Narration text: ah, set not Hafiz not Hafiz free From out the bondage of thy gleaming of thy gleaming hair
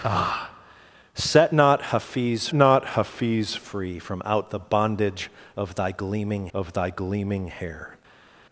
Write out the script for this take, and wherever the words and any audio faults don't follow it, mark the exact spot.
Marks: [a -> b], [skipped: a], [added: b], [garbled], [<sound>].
ah, set not Hafiz not Hafiz free From out the bondage of thy gleaming of thy gleaming hair